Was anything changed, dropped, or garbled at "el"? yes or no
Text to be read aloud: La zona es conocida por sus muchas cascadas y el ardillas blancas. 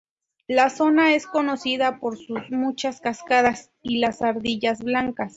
yes